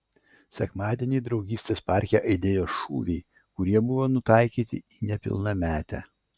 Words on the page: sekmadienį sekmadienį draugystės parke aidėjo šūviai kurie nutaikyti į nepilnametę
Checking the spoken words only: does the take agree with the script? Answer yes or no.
no